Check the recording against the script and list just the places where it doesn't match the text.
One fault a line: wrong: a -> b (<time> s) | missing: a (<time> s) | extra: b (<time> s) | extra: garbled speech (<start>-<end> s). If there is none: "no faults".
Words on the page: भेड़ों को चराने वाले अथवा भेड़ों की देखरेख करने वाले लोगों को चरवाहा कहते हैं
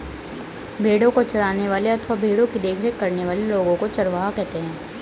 no faults